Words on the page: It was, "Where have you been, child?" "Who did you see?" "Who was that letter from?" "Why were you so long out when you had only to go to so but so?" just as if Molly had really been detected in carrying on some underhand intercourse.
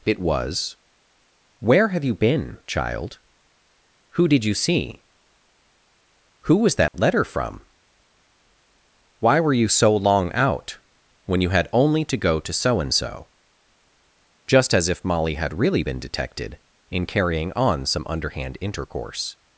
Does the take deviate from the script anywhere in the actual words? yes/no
yes